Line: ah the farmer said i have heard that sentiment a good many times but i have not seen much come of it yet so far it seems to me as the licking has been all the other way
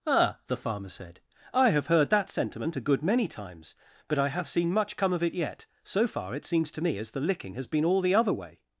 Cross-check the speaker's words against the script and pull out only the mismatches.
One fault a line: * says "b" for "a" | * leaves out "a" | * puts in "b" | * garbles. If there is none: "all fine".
* leaves out "not"